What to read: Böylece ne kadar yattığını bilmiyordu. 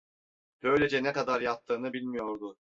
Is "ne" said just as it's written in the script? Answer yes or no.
yes